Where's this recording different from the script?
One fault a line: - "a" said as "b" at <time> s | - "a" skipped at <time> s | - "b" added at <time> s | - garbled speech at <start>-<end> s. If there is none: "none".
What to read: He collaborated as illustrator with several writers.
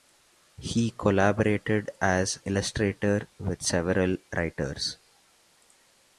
none